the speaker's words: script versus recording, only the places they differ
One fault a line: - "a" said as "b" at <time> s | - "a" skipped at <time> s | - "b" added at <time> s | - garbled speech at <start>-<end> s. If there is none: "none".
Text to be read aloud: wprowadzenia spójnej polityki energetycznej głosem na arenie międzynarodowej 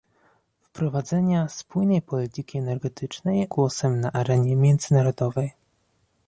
none